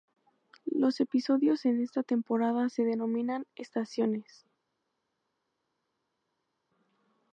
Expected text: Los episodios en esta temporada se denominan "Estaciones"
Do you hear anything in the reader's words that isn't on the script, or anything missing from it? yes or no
no